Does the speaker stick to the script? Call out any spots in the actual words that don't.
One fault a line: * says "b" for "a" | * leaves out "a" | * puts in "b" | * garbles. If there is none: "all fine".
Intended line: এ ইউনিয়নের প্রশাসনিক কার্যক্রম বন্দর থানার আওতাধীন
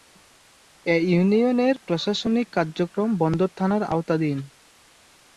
all fine